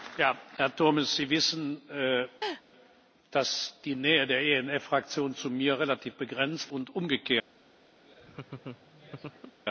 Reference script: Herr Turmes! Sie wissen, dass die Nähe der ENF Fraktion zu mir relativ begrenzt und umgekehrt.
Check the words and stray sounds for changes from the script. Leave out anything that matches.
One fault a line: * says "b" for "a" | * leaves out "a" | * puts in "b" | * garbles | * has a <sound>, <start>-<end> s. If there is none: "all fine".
* has a laugh, 2.4-2.6 s
* has a laugh, 8.0-9.6 s